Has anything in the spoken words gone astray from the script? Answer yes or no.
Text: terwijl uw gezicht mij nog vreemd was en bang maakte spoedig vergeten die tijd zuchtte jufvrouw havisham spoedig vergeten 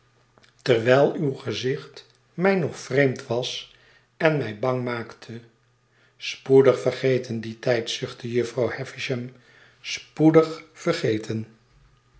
yes